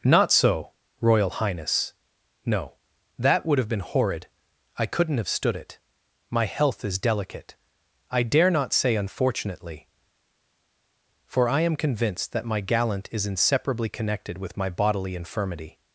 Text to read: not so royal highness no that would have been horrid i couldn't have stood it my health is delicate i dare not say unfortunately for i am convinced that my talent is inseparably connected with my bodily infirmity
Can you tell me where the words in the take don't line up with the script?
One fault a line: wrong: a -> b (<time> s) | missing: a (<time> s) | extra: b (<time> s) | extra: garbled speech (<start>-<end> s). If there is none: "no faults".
wrong: talent -> gallant (12.6 s)